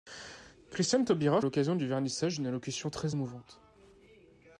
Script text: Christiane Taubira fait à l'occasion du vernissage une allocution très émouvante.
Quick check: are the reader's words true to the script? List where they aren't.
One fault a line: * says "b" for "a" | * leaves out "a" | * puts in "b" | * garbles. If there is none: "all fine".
* leaves out "fait"